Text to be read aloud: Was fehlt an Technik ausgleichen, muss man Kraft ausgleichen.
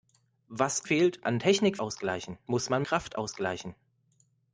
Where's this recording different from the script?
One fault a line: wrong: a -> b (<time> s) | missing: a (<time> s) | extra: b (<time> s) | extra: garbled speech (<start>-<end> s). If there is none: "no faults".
no faults